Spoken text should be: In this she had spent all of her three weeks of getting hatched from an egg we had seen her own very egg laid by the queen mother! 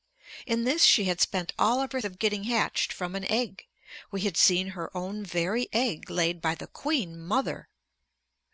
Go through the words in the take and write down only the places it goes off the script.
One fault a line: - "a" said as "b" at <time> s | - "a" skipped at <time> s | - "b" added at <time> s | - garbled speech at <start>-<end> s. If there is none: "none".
- "three weeks" skipped at 2.0 s